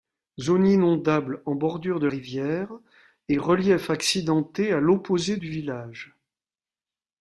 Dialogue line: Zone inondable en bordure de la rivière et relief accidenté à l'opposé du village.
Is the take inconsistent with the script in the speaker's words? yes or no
yes